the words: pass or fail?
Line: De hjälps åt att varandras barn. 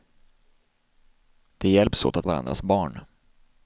pass